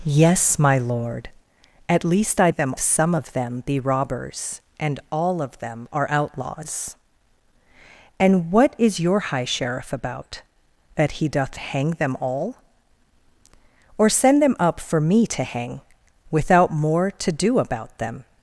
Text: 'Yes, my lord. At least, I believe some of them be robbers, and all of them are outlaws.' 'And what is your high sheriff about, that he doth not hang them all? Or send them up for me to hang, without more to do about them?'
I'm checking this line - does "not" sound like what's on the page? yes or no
no